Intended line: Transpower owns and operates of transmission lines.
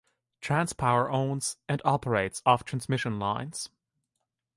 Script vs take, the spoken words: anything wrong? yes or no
no